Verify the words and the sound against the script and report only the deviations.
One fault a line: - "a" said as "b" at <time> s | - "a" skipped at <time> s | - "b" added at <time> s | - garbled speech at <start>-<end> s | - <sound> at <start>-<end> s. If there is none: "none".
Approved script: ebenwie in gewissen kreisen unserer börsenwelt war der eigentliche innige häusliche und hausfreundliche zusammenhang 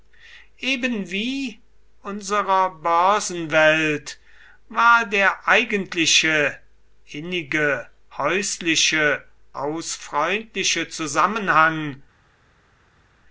- "in gewissen kreisen" skipped at 1.6 s
- "und" skipped at 9.2 s